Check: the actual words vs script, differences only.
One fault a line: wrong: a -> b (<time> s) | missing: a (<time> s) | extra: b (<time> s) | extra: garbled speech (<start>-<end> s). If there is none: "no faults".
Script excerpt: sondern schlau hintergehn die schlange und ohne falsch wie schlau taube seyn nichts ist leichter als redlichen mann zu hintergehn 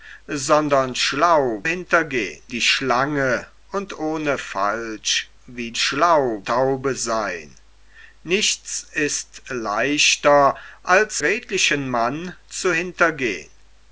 no faults